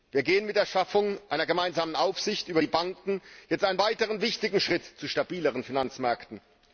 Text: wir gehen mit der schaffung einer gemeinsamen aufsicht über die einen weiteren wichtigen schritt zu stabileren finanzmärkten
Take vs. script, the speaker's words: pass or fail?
fail